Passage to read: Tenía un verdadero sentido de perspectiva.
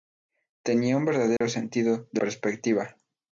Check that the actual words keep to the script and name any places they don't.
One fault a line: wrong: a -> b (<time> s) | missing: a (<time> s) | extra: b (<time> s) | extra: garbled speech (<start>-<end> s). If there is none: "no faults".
no faults